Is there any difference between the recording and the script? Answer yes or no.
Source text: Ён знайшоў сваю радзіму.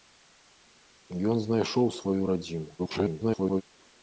yes